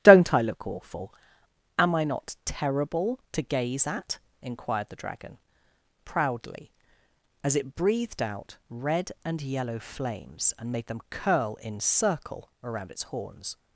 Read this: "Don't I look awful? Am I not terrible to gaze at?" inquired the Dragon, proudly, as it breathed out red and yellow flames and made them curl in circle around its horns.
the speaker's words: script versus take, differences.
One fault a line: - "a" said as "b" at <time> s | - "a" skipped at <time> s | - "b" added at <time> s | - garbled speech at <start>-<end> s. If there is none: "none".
none